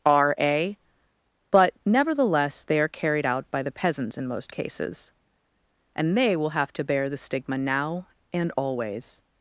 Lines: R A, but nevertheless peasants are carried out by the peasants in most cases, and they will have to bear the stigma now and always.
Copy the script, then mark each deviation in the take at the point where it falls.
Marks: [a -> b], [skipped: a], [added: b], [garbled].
R A, but nevertheless [peasants -> they] are carried out by the peasants in most cases, and they will have to bear the stigma now and always.